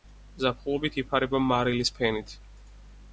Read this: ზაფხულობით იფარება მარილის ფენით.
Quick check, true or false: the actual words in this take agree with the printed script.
true